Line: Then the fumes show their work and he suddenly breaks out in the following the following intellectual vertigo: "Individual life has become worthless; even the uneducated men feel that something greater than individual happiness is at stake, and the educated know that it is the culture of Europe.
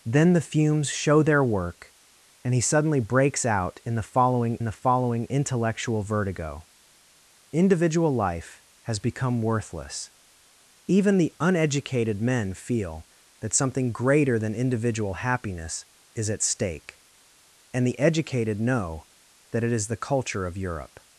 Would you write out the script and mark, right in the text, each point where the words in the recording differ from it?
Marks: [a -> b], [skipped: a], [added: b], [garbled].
Then the fumes show their work and he suddenly breaks out in the following the following intellectual vertigo: "Individual life has become worthless; even the uneducated men feel that something greater than individual happiness is at stake, and the educated know that it is the culture of Europe.